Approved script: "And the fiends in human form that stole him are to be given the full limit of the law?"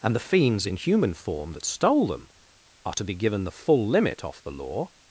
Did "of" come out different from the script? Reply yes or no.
yes